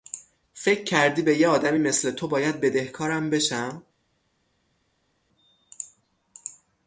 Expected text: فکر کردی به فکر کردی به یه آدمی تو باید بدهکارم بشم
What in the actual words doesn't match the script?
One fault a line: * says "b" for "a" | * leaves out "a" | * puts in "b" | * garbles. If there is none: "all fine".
* leaves out "فکر کردی به"
* puts in "مثل"